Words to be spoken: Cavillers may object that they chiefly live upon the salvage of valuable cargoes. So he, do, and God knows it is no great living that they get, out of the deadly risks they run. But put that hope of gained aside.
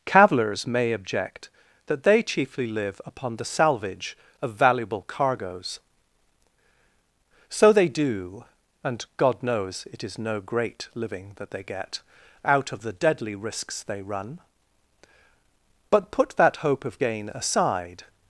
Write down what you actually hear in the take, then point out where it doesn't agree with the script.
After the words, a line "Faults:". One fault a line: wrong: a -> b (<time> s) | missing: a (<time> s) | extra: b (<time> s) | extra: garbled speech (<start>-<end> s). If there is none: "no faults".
Cavillers may object that they chiefly live upon the salvage of valuable cargoes. So they, do, and God knows it is no great living that they get, out of the deadly risks they run. But put that hope of gain aside.
Faults:
wrong: he -> they (7.7 s)
wrong: gained -> gain (17.0 s)